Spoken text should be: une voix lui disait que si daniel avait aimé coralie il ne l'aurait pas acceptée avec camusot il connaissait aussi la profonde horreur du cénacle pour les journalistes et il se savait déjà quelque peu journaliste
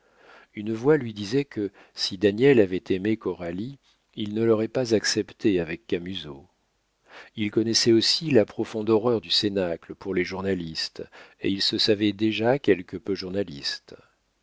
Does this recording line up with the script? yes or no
yes